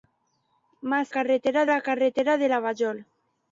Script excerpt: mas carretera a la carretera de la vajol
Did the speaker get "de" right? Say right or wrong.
right